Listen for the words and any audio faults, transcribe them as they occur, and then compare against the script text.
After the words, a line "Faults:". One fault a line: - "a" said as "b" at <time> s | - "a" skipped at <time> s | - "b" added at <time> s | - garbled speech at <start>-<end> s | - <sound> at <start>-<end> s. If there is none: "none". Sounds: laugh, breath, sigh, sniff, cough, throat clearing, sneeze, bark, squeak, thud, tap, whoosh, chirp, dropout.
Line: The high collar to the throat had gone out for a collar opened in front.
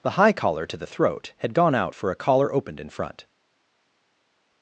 The high collar to the throat had gone out for a collar opened in front.
Faults:
none